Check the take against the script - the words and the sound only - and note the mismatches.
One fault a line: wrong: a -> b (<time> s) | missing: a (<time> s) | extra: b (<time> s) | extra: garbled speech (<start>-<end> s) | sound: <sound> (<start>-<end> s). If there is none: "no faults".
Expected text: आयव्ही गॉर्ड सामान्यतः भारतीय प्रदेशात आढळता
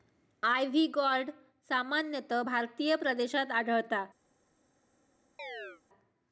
sound: chirp (5.4-5.8 s)